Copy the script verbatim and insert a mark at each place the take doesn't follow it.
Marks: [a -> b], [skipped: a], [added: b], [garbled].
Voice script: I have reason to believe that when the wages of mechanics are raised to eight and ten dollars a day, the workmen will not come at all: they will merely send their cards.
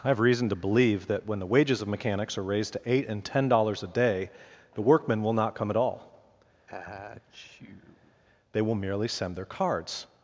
I have reason to believe that when the wages of mechanics are raised to eight and ten dollars a day, the workmen will not come at all: they will merely send their cards.